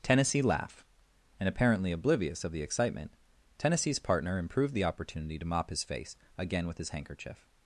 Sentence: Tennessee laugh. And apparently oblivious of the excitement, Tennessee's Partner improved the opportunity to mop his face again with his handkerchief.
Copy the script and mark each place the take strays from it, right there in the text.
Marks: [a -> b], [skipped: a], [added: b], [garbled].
Tennessee laugh. And apparently oblivious of the excitement, Tennessee's Partner improved the opportunity to mop his face again with his handkerchief.